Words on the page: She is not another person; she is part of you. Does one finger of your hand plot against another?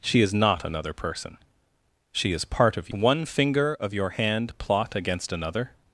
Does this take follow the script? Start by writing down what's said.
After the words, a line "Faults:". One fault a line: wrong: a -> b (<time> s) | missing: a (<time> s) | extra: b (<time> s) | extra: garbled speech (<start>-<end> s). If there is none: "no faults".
She is not another person; she is part of one finger of your hand plot against another?
Faults:
missing: you Does (2.9 s)